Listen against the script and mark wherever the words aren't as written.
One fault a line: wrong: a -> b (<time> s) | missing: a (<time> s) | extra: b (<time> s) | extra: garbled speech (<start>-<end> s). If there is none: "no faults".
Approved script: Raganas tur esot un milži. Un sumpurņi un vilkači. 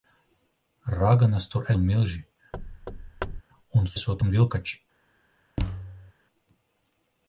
missing: esot (1.7 s)
wrong: sumpurņi -> esot (4.0 s)